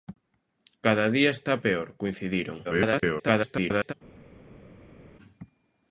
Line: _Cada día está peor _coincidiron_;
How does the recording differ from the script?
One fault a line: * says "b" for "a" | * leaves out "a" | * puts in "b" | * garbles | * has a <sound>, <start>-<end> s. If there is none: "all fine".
* garbles